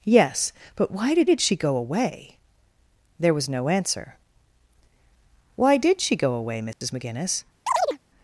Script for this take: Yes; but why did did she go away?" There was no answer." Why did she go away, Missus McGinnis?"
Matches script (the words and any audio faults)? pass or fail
fail